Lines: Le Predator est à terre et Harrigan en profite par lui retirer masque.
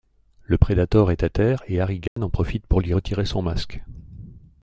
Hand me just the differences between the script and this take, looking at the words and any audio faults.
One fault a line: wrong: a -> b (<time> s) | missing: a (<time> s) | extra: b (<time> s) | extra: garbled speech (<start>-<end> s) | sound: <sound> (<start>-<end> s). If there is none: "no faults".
sound: dropout (2.1-2.2 s)
wrong: par -> pour (2.6 s)
extra: son (3.2 s)